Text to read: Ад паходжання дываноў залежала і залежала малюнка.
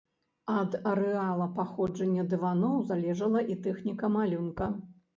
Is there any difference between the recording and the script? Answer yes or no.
yes